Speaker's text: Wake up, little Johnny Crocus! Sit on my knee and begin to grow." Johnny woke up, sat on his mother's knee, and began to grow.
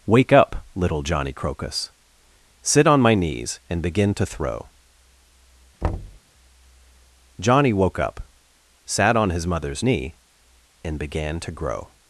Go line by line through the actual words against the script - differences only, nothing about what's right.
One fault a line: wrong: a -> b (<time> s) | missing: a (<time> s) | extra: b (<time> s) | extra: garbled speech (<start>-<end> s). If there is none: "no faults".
wrong: knee -> knees (3.1 s)
wrong: grow -> throw (4.2 s)